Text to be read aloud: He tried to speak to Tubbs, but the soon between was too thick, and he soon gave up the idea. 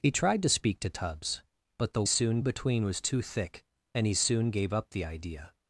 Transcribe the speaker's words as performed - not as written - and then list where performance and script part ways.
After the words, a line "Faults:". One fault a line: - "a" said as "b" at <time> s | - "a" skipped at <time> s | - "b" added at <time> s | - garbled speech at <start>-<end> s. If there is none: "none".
He tried to speak to Tubbs, but the soon between was too thick, and he soon gave up the idea.
Faults:
none